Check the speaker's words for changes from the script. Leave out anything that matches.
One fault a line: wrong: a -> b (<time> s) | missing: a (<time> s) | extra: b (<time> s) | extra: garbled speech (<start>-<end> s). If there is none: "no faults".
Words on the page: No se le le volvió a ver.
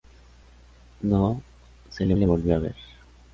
no faults